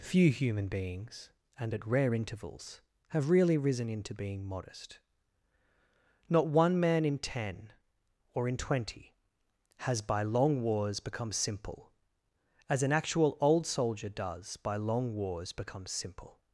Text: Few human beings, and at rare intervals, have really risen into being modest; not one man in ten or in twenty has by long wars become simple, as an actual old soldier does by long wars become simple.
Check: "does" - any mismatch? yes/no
no